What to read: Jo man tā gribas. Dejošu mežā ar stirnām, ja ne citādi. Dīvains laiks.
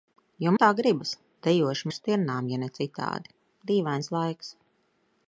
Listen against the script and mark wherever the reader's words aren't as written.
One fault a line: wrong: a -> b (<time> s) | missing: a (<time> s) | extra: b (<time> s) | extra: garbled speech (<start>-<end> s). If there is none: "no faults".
missing: man (0.5 s)
missing: mežā (1.9 s)